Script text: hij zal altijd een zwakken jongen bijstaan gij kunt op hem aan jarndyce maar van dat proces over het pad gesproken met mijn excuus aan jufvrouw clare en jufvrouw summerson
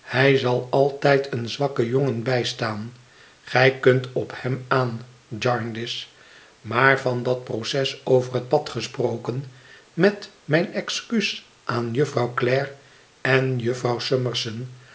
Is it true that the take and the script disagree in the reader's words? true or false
false